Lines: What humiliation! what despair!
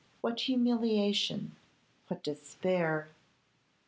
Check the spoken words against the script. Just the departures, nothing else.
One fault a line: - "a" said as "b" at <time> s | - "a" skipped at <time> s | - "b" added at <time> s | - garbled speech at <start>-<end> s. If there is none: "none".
none